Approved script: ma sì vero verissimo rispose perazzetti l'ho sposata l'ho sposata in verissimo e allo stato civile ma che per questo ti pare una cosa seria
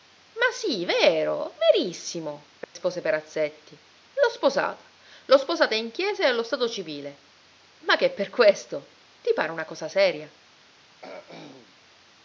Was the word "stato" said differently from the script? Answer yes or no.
no